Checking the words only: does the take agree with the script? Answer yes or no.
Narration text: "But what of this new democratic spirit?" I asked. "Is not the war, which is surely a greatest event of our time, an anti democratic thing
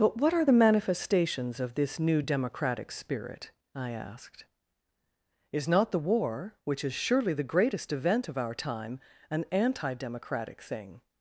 no